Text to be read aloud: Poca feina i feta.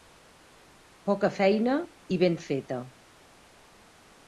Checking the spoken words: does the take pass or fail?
fail